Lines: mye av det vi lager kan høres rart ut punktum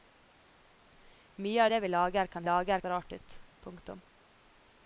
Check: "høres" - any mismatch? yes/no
yes